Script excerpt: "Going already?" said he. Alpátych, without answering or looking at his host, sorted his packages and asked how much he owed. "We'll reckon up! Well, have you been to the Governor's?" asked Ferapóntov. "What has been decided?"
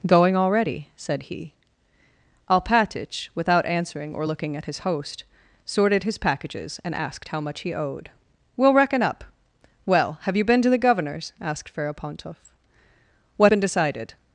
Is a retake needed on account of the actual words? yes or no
yes